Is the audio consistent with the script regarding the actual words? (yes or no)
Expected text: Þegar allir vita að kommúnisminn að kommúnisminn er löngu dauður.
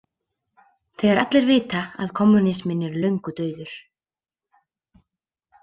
no